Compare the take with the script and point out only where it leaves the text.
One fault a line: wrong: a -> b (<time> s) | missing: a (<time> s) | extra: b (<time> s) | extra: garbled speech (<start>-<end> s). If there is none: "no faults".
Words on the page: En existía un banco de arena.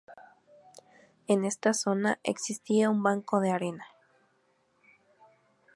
extra: esta zona (1.4 s)